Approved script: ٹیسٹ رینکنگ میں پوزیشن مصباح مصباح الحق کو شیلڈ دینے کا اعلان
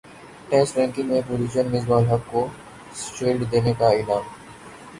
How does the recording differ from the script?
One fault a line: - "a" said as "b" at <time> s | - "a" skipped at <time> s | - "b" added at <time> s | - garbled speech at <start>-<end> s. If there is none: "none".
- "مصباح" skipped at 2.0 s